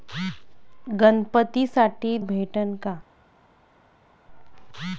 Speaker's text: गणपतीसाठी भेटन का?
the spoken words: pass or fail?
pass